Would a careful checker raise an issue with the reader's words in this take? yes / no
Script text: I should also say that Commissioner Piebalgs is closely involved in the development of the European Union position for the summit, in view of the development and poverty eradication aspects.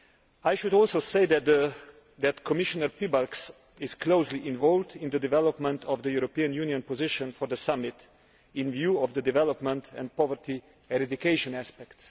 no